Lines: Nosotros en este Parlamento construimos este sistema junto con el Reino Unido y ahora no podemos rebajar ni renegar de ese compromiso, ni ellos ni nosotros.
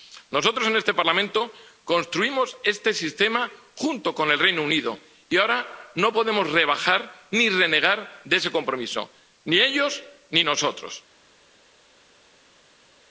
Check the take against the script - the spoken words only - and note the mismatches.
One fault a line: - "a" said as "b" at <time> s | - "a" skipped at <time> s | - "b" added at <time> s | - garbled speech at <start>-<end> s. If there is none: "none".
none